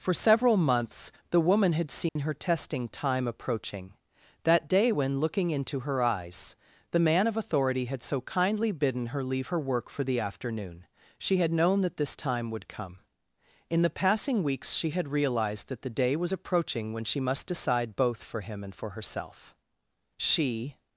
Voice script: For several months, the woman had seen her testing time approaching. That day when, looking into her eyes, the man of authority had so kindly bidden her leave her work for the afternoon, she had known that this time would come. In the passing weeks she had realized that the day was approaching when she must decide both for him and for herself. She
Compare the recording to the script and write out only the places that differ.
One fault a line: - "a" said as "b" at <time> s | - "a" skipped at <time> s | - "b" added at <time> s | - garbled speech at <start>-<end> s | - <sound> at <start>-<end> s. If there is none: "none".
- dropout at 2.1-2.2 s